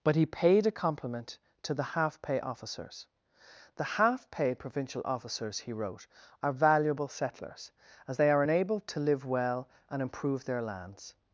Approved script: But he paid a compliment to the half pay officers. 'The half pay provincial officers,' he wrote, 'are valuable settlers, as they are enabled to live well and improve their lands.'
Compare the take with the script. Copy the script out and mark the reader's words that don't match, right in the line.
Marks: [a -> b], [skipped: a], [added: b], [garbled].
But he paid a compliment to the half pay officers. 'The half pay provincial officers,' he wrote, 'are valuable settlers, as they are enabled to live well and improve their lands.'